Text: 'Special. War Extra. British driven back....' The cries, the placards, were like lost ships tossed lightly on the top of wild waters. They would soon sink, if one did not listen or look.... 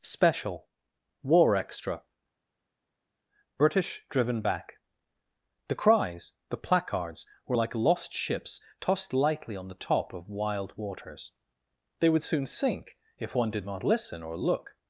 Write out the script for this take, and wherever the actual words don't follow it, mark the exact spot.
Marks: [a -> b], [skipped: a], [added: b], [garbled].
'Special. War Extra. British driven back....' The cries, the placards, were like lost ships tossed lightly on the top of wild waters. They would soon sink, if one did not listen or look....